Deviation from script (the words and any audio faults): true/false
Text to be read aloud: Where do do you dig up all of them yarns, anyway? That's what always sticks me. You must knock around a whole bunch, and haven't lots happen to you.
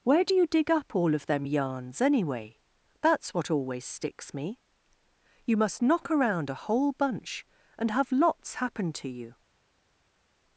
true